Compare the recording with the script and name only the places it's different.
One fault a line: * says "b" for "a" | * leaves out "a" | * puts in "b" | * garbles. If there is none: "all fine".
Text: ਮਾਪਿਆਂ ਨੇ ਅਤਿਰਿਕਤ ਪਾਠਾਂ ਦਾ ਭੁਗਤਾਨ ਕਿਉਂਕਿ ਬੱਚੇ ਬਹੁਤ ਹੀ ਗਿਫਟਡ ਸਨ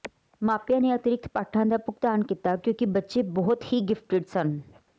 * puts in "ਕੀਤਾ"